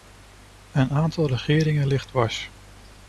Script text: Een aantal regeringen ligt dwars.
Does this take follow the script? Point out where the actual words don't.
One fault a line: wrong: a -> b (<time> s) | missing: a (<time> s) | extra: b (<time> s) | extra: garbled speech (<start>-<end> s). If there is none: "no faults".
no faults